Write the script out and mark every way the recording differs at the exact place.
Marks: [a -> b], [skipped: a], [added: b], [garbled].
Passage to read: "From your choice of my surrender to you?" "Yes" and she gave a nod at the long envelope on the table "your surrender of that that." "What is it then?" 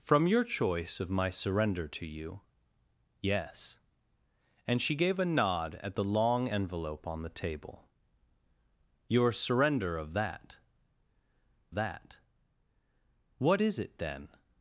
"From your choice of my surrender to you?" "Yes" and she gave a nod at the long envelope on the table "your surrender of that that." "What is it then?"